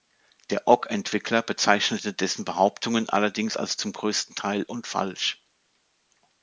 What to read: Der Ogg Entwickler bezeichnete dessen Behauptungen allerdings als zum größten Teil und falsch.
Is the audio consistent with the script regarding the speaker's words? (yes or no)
yes